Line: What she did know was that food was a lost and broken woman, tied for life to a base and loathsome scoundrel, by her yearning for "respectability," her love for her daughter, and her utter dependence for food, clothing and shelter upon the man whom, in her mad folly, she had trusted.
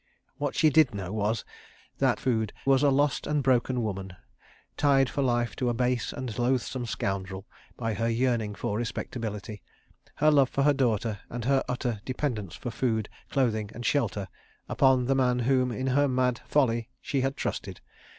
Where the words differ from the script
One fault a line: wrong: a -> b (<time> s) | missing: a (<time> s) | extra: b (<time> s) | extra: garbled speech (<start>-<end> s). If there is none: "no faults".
no faults